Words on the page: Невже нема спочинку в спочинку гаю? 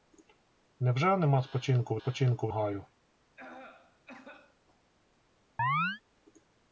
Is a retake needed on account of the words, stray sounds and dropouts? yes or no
yes